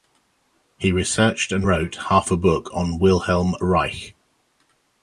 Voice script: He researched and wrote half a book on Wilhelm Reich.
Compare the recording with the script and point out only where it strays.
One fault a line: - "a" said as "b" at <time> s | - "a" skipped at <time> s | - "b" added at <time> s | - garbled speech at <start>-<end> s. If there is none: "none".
none